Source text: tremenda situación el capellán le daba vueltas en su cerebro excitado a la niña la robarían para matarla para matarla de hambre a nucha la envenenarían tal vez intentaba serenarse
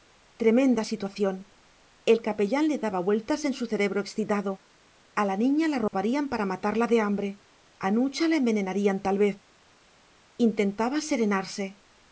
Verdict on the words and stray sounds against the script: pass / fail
fail